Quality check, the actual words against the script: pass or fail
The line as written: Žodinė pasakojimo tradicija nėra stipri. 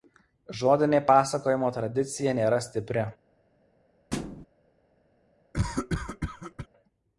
pass